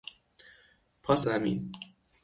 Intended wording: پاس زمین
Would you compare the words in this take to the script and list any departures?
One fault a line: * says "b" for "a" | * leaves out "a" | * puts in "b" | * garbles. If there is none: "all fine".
all fine